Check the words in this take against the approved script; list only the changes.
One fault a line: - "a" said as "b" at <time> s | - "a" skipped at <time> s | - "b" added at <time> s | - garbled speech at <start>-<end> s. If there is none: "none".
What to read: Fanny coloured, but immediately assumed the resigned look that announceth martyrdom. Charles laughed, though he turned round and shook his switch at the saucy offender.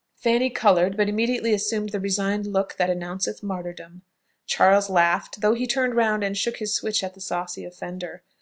none